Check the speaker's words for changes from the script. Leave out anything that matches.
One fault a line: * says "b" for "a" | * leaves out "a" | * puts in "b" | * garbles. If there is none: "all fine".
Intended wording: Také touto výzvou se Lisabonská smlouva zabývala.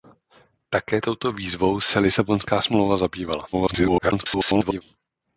* garbles